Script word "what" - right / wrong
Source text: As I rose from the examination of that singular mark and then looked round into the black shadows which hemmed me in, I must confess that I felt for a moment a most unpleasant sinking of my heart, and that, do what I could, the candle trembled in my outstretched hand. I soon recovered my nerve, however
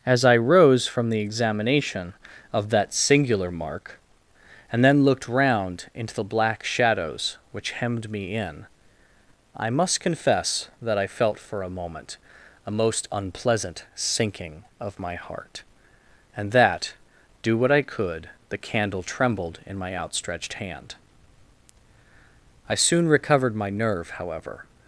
right